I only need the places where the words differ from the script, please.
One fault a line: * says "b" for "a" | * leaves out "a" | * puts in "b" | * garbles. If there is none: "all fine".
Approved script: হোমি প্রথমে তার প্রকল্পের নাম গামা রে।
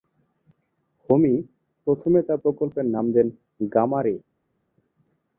* puts in "দেন"